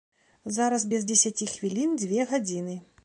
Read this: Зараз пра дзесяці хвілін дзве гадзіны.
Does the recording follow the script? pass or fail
fail